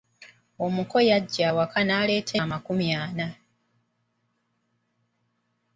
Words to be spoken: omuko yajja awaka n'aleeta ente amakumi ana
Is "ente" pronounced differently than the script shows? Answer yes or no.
yes